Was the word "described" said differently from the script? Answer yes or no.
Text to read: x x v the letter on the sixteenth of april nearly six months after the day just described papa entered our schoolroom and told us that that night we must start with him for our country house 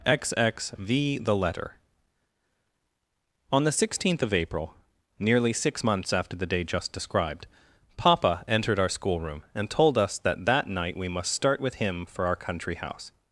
no